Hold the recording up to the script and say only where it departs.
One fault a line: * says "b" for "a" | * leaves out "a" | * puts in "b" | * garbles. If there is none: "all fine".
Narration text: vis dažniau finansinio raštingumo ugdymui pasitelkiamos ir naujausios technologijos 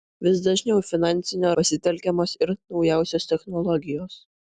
* leaves out "raštingumo ugdymui"